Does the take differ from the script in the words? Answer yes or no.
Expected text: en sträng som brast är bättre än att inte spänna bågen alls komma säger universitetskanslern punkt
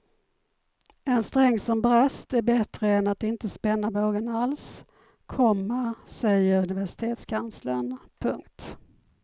no